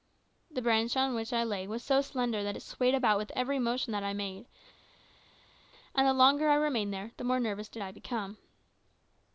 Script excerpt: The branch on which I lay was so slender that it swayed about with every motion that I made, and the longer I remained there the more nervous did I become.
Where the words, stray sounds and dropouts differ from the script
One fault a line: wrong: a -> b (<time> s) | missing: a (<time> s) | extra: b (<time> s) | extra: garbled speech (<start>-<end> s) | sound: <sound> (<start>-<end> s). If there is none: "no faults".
no faults